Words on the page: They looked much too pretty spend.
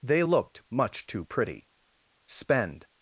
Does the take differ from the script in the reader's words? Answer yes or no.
no